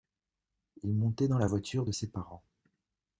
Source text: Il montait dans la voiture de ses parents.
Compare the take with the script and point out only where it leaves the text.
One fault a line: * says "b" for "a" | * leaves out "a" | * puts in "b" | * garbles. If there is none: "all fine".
all fine